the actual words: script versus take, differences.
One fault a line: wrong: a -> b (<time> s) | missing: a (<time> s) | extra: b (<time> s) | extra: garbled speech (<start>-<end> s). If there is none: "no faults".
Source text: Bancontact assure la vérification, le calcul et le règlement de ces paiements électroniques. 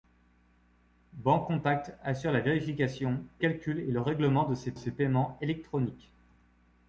missing: le (3.2 s)
extra: ces (4.7 s)